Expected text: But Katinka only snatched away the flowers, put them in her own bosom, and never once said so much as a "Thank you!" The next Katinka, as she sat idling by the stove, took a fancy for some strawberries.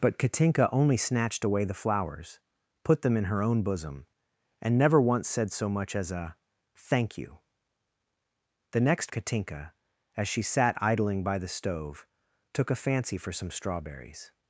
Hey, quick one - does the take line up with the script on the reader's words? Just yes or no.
yes